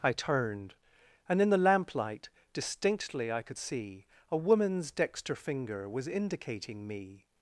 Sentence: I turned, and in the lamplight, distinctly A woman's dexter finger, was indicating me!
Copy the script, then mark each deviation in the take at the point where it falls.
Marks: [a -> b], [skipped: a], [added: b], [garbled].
I turned, and in the lamplight, distinctly [added: I could see] A woman's dexter finger, was indicating me!